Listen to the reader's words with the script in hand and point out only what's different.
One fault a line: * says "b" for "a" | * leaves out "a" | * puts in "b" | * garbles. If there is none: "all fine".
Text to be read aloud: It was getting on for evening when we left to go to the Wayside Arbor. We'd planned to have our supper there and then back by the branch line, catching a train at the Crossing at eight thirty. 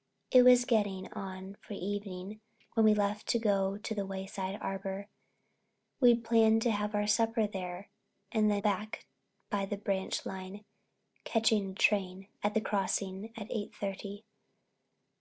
all fine